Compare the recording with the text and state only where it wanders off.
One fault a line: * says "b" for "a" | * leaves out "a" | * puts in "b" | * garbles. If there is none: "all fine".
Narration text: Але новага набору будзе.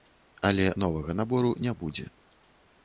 * puts in "не"